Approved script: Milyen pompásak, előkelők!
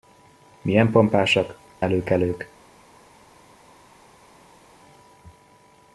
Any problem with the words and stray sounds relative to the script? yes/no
no